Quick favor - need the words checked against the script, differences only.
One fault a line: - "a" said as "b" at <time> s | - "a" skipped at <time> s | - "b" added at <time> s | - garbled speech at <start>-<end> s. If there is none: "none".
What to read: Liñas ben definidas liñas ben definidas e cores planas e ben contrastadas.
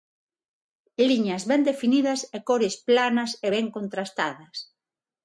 - "liñas ben definidas" skipped at 2.2 s